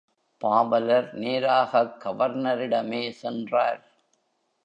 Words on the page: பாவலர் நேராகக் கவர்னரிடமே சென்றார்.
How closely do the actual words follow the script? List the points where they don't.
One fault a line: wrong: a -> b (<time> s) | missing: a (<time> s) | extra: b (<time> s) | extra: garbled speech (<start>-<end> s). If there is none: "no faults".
no faults